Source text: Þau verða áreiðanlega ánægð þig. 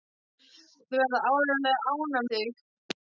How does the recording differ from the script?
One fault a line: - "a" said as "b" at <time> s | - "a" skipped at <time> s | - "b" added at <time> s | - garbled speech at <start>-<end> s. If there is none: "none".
none